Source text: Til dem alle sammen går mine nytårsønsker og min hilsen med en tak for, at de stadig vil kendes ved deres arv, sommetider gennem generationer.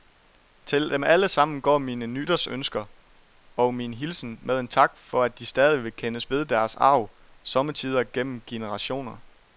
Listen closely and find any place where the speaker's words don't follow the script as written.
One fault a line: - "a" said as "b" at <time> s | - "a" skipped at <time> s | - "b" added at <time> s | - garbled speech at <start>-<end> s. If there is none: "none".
none